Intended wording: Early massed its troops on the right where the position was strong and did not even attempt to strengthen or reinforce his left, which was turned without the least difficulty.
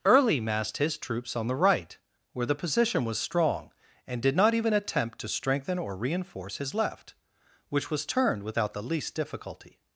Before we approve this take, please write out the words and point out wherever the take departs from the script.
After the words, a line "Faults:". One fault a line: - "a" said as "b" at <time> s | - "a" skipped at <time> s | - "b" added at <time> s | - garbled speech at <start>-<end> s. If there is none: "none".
Early massed his troops on the right where the position was strong and did not even attempt to strengthen or reinforce his left, which was turned without the least difficulty.
Faults:
- "its" said as "his" at 0.8 s